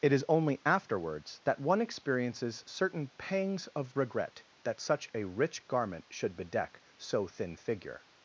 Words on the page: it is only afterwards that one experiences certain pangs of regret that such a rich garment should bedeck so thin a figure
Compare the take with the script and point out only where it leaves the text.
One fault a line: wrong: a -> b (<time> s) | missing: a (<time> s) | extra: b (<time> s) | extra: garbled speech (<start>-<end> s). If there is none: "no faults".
missing: a (7.6 s)